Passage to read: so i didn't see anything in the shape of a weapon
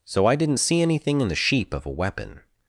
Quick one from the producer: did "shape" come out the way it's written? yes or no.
no